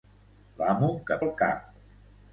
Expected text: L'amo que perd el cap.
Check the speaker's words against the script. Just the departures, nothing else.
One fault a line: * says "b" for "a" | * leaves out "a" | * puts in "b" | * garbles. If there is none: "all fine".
* leaves out "perd"